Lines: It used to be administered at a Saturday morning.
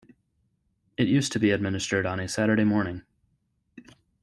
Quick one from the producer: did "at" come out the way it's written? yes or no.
no